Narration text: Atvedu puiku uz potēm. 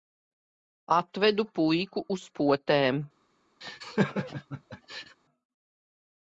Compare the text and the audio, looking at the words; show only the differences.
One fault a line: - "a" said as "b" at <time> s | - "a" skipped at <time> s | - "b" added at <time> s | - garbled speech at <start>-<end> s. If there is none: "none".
none